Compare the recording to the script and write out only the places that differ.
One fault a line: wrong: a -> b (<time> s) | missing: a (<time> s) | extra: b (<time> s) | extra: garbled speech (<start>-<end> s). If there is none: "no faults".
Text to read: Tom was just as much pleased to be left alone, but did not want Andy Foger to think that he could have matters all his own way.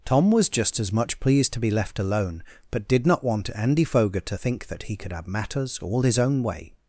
no faults